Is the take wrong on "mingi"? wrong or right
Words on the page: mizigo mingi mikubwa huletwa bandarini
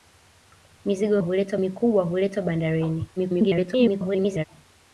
wrong